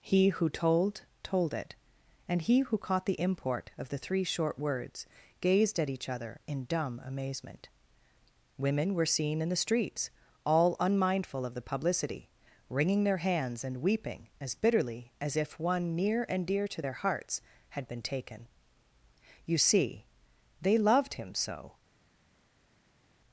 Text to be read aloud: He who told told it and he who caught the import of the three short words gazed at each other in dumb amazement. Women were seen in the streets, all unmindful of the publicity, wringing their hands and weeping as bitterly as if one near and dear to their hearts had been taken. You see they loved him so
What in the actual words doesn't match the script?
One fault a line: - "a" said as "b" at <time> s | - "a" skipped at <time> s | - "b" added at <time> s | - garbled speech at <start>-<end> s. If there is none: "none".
none